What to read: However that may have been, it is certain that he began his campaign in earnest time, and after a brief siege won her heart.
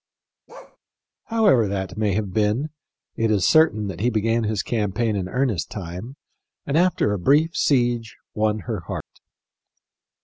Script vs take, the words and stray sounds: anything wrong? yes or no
yes